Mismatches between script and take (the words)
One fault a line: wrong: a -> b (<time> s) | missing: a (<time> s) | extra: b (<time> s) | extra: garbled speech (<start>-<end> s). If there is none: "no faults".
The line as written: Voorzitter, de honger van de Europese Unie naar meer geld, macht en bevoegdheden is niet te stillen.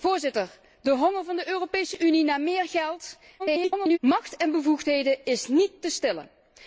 extra: garbled speech (3.4-4.0 s)